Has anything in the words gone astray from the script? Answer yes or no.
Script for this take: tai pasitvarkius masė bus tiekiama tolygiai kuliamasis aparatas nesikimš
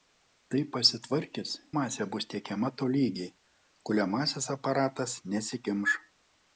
no